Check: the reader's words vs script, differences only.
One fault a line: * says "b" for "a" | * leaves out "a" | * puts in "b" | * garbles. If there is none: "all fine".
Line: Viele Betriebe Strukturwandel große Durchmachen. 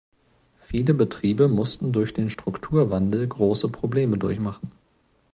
* puts in "mussten durch den"
* puts in "Probleme"